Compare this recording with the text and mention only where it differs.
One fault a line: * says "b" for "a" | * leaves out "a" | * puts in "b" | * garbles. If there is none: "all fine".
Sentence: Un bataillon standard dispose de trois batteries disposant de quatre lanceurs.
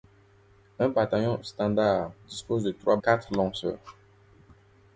* leaves out "batteries disposant de"